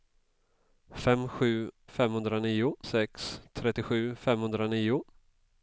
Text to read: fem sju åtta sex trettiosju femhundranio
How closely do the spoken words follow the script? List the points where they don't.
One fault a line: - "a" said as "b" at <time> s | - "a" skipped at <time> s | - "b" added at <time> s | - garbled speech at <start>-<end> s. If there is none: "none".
- "åtta" said as "femhundranio" at 1.9 s